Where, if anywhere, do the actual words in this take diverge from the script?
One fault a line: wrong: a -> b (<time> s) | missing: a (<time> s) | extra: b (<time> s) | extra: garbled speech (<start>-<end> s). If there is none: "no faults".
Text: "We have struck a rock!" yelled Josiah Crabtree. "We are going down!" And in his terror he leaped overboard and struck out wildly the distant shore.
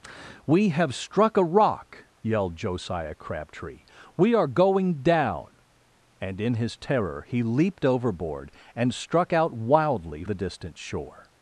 no faults